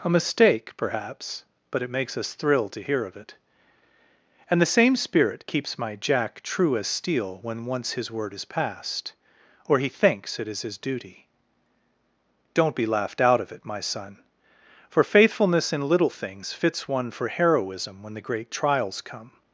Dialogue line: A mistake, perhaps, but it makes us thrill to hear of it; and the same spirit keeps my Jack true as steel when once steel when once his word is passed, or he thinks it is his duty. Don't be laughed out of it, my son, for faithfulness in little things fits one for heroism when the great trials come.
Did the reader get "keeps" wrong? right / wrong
right